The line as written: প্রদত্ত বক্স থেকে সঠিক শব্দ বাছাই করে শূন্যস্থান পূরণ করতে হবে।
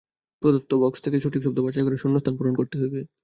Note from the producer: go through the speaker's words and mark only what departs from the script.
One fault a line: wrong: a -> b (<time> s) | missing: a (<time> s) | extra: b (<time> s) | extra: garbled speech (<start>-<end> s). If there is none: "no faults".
no faults